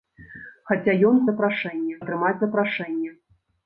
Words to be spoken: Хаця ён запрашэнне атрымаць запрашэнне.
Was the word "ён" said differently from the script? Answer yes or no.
no